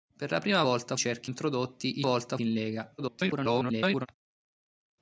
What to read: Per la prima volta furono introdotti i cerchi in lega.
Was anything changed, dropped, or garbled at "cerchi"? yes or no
yes